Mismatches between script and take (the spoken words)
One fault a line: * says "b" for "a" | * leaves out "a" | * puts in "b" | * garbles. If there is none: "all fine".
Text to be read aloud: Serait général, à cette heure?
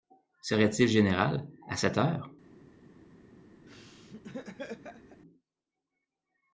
* puts in "il"